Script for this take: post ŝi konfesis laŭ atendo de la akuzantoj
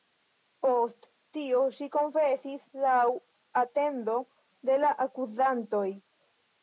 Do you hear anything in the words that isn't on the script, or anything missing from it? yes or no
yes